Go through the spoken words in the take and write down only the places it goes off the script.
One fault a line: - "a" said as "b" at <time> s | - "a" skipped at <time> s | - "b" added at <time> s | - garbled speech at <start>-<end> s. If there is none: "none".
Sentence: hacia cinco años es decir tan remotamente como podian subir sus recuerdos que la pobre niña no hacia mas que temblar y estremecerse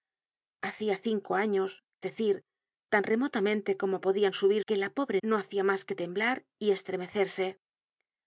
- "es" skipped at 1.8 s
- "sus recuerdos" skipped at 4.6 s
- "niña" skipped at 5.2 s